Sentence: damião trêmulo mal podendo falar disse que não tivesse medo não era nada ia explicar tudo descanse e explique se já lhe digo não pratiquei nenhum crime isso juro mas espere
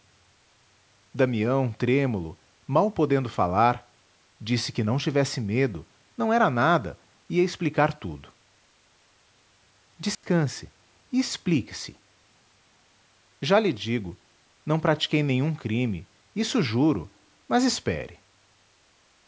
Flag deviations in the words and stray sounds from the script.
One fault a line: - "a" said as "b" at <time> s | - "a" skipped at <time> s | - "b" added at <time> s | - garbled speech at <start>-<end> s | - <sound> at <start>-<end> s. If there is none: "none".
- dropout at 10.1-10.2 s